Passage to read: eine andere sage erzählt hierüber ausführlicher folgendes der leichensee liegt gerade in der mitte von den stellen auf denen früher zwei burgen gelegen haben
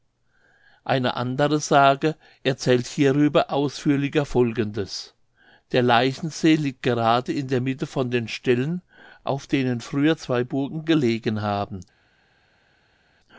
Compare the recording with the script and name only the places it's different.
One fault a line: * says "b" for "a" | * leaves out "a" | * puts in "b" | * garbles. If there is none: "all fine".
all fine